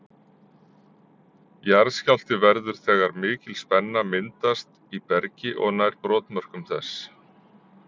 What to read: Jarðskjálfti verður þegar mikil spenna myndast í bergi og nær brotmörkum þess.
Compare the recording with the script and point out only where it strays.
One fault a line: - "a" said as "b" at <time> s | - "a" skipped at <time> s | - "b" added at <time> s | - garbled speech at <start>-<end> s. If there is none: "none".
none